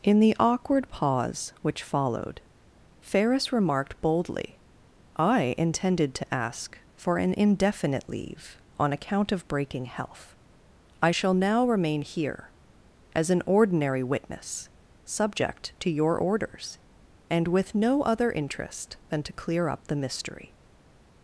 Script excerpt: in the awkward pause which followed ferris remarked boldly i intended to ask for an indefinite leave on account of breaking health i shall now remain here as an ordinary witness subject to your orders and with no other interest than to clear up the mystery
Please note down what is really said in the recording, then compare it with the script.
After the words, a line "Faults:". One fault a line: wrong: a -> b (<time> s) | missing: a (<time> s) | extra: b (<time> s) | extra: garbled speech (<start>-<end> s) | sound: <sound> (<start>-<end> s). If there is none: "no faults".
in the awkward pause which followed ferris remarked boldly i intended to ask for an indefinite leave on account of breaking health i shall now remain here as an ordinary witness subject to your orders and with no other interest than to clear up the mystery
Faults:
no faults